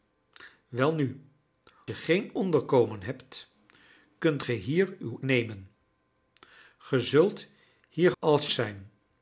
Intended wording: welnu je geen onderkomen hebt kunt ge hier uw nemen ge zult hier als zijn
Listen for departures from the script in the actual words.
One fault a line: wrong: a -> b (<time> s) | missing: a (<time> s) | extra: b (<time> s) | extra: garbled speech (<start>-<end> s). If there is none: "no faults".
no faults